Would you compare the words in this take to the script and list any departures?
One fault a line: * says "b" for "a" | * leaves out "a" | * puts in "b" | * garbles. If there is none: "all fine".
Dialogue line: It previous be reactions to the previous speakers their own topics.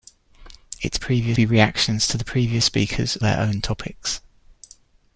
all fine